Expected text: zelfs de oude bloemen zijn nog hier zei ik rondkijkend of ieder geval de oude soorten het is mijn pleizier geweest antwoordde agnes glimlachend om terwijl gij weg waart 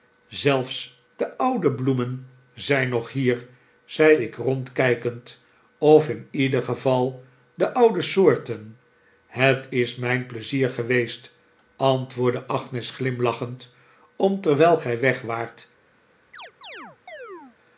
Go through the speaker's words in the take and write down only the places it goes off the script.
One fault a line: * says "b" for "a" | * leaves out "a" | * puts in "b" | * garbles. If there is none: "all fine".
* puts in "in"